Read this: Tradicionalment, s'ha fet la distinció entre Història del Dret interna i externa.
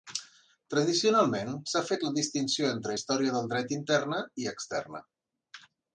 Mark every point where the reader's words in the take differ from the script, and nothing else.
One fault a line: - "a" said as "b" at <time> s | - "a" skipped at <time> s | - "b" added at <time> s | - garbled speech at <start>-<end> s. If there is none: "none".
none